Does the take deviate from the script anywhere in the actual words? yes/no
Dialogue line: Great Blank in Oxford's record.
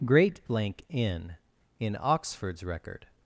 yes